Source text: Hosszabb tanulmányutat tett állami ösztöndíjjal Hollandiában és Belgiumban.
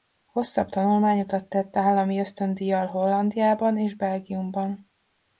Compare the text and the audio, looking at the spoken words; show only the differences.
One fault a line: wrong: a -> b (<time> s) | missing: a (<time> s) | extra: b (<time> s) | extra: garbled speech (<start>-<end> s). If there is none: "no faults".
no faults